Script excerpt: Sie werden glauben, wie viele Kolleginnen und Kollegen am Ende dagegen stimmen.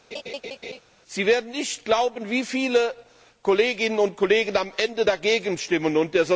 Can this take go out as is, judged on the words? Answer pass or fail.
fail